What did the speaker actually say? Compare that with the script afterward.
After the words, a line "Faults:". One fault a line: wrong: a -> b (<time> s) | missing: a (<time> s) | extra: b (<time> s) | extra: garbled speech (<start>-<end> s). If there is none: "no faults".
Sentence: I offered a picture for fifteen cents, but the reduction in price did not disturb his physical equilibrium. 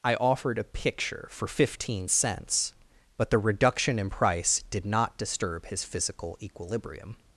I offered a picture for fifteen cents, but the reduction in price did not disturb his physical equilibrium.
Faults:
no faults